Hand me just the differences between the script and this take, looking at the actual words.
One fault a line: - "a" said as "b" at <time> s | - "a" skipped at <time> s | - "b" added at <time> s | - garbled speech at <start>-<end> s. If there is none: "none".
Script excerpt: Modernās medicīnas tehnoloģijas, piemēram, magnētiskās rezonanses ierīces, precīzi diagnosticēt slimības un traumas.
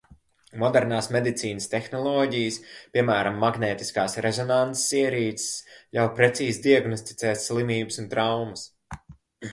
- "ļauj" added at 6.0 s